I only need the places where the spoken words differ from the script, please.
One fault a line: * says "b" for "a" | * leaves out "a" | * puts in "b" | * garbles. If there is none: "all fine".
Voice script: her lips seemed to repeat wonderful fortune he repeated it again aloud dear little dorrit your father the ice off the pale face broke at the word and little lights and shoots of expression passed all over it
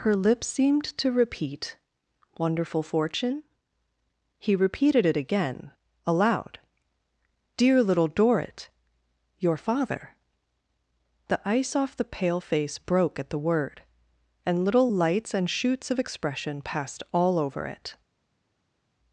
all fine